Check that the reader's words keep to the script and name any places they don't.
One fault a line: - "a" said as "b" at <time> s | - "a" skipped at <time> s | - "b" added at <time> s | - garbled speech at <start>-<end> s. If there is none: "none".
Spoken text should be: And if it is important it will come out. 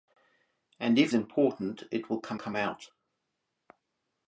- "it is" skipped at 1.1 s
- "come" added at 2.3 s